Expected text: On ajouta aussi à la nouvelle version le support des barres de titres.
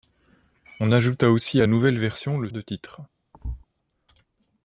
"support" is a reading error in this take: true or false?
true